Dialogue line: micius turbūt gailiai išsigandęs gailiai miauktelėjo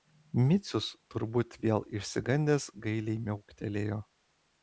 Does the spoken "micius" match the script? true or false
true